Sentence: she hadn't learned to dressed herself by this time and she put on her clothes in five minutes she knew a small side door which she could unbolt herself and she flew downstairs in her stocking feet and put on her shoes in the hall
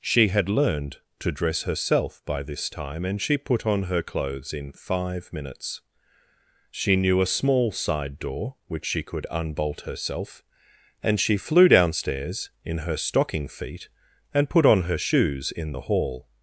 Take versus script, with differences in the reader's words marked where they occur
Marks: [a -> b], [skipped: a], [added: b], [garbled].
she [hadn't -> had] learned to [dressed -> dress] herself by this time and she put on her clothes in five minutes she knew a small side door which she could unbolt herself and she flew downstairs in her stocking feet and put on her shoes in the hall